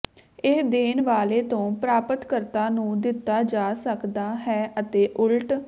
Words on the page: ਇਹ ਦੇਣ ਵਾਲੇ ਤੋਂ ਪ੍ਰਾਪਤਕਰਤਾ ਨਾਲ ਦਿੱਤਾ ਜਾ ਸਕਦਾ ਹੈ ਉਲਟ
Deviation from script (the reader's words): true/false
true